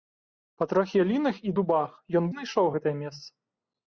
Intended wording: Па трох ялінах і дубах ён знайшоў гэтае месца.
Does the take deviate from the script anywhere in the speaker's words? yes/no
no